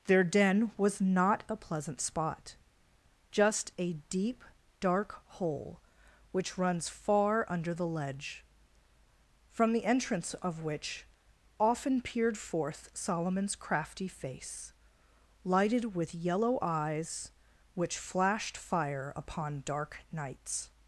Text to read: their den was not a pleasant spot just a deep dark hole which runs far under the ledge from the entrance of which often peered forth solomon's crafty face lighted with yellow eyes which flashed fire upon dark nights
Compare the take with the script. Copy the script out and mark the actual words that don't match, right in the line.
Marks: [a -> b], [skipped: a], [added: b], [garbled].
their den was not a pleasant spot just a deep dark hole which runs far under the ledge from the entrance of which often peered forth solomon's crafty face lighted with yellow eyes which flashed fire upon dark nights